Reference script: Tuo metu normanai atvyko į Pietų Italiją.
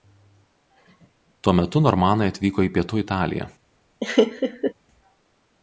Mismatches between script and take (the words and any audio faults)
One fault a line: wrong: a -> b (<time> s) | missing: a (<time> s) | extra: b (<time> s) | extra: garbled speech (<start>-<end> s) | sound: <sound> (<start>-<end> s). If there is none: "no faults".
sound: laugh (4.0-4.7 s)